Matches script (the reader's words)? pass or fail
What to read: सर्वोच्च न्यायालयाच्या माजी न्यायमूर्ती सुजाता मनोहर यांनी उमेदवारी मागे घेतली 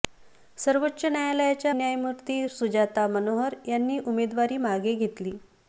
fail